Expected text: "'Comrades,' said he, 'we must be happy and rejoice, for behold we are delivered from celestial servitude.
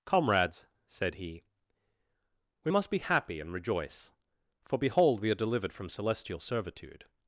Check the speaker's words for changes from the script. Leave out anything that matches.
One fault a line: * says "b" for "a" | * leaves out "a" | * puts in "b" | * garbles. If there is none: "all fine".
all fine